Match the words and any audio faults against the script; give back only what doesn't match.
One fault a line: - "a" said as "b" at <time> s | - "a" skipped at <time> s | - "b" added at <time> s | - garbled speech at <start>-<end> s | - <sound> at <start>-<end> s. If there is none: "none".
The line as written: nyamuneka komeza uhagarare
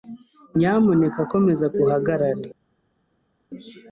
none